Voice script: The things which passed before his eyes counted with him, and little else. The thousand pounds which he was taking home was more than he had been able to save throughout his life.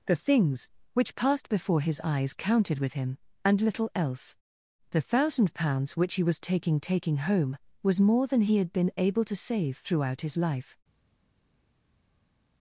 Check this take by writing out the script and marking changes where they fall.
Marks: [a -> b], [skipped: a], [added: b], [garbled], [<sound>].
The things which passed before his eyes counted with him, and little else. The thousand pounds which he was taking [added: taking] home was more than he had been able to save throughout his life.